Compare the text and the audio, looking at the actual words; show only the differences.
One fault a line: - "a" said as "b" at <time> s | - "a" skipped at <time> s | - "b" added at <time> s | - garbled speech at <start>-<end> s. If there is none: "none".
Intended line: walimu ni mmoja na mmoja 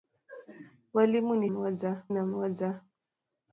none